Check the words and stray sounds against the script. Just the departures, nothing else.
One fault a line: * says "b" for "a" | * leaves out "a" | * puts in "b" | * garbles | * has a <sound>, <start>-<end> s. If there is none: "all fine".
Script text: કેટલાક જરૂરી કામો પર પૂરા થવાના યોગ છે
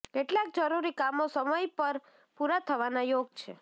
* puts in "સમય"